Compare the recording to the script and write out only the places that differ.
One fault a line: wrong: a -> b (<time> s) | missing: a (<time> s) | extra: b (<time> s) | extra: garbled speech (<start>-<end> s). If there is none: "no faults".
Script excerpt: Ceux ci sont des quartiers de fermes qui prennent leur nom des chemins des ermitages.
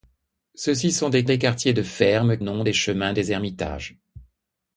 extra: des (1.2 s)
missing: qui prennent leur (2.4 s)